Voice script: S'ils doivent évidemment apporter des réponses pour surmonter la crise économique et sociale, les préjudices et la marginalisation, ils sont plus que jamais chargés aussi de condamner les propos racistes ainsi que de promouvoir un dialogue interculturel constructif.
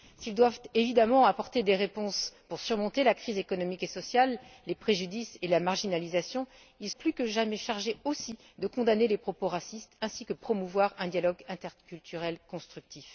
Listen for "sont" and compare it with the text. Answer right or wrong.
wrong